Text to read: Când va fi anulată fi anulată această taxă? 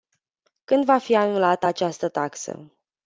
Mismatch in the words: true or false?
true